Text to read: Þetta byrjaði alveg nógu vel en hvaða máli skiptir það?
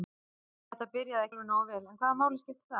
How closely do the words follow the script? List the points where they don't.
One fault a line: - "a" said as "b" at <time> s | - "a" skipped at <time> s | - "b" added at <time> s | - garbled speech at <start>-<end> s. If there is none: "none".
none